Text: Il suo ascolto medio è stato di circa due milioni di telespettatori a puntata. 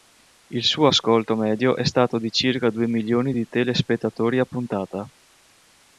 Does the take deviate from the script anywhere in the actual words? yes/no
no